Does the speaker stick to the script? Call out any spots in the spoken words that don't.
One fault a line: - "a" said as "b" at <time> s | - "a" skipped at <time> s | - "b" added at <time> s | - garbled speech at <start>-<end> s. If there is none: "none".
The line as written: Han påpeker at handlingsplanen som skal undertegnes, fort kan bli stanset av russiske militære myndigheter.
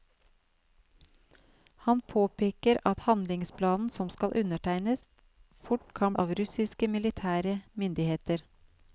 - "bli stanset" skipped at 6.1 s